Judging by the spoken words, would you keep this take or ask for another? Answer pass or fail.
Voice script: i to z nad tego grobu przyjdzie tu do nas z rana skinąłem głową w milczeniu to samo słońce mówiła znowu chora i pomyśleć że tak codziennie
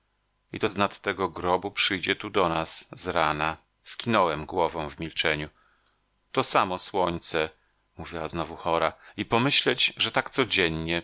pass